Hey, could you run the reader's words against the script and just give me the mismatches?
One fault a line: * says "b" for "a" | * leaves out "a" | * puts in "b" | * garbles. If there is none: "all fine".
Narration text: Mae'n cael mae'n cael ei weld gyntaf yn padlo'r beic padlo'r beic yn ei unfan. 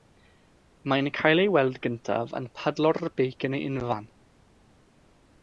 * leaves out "mae'n cael"
* leaves out "padlo'r beic"